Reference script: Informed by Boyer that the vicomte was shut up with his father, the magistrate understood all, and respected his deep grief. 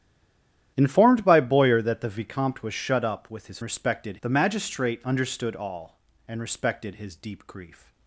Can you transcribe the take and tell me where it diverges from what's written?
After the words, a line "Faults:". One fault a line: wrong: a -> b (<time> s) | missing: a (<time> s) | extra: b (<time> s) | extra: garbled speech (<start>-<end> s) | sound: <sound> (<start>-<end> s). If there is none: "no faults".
Informed by Boyer that the vicomte was shut up with his respected, the magistrate understood all, and respected his deep grief.
Faults:
wrong: father -> respected (3.6 s)